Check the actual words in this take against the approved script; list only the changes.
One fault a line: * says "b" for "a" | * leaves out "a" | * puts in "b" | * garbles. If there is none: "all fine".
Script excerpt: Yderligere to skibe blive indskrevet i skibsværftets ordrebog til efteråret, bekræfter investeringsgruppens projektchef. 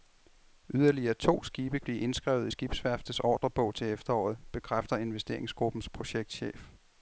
all fine